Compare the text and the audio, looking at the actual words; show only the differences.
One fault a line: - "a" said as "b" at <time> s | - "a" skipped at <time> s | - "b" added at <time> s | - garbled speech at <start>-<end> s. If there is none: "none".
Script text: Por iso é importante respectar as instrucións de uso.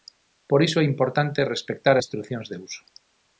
- "as" skipped at 1.9 s